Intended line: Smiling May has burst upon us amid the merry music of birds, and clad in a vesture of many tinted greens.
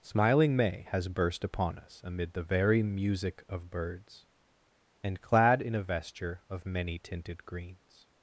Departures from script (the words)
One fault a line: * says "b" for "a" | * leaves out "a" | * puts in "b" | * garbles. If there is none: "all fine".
* says "very" for "merry"